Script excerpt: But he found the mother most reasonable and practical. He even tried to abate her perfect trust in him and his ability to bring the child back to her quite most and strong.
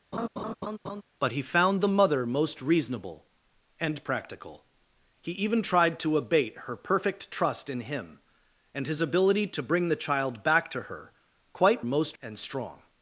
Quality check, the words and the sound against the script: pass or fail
fail